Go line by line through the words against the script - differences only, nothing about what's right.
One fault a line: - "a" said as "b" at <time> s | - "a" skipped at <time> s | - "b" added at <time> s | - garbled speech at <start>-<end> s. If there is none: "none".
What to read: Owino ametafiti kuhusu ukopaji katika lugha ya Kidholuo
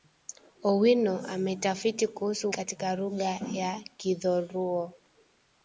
- "ukopaji" skipped at 2.5 s